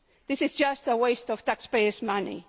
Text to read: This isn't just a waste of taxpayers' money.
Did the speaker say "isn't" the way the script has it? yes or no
no